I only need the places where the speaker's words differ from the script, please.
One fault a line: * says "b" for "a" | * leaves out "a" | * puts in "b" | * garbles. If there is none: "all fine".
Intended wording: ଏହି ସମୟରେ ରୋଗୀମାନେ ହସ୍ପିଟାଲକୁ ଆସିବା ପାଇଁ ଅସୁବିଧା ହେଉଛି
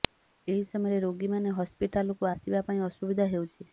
all fine